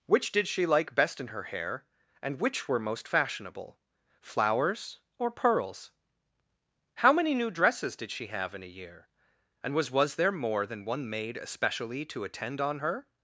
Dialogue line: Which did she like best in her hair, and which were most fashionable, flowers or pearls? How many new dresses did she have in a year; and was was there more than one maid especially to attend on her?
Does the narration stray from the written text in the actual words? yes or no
no